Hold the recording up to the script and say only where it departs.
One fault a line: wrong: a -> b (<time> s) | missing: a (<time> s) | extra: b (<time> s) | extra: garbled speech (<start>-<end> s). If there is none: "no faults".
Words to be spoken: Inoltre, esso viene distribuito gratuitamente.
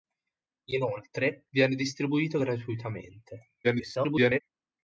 missing: esso (1.4 s)
extra: garbled speech (3.6-4.4 s)